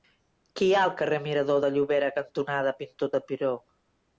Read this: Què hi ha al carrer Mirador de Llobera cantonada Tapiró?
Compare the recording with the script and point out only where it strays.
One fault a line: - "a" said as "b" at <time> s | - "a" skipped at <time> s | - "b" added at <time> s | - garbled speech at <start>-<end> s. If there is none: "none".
- "Pintor" added at 2.8 s